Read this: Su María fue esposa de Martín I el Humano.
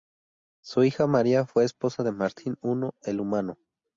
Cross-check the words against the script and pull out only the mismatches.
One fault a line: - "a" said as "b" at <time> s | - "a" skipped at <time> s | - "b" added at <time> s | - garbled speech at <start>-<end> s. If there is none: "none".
- "hija" added at 0.8 s